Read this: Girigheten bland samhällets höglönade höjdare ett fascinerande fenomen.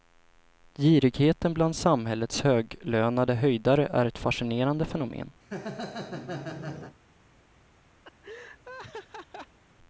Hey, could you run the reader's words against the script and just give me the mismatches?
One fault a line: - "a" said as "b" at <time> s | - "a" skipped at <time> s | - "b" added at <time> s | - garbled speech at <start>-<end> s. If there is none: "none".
- "är" added at 3.9 s